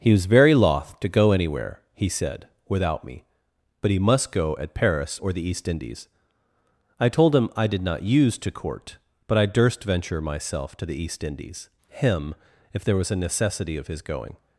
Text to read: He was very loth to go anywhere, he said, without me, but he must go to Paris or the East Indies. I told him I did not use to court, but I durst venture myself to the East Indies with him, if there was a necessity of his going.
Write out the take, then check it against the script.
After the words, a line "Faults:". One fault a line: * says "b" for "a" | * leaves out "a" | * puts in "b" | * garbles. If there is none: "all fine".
He was very loth to go anywhere, he said, without me, but he must go at Paris or the East Indies. I told him I did not use to court, but I durst venture myself to the East Indies him, if there was a necessity of his going.
Faults:
* says "at" for "to"
* leaves out "with"